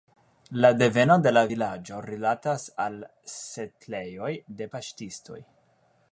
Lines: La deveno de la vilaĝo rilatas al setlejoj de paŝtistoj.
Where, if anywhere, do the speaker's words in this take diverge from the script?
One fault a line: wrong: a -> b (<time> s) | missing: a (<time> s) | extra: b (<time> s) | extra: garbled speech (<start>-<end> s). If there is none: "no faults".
no faults